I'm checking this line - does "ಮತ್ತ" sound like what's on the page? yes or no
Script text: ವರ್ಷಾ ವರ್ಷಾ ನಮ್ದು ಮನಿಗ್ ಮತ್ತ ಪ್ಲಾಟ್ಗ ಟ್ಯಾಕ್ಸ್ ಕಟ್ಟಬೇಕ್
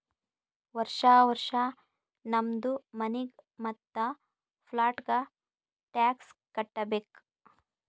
yes